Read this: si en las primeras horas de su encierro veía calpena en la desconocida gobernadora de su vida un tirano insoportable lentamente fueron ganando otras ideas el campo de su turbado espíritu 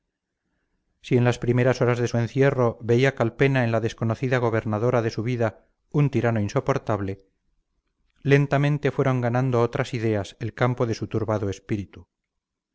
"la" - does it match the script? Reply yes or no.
yes